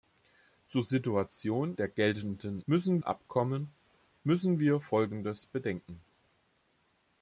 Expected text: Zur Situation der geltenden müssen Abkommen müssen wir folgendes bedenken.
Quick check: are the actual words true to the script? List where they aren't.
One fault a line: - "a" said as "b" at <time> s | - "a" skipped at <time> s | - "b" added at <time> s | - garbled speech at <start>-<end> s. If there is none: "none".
none